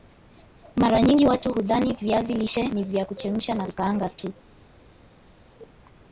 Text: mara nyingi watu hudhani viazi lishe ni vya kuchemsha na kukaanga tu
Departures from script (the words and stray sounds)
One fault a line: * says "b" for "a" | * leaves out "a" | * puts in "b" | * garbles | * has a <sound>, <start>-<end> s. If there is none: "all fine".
all fine